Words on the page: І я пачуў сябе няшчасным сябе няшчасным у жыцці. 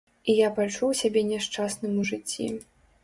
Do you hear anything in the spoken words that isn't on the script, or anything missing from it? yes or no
yes